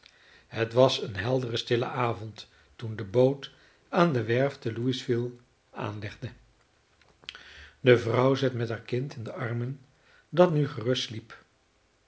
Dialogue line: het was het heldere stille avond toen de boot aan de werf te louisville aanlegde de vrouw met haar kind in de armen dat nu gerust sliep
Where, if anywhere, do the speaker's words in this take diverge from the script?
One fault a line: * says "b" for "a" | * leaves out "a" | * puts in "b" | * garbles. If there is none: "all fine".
* says "een" for "het"
* puts in "zat"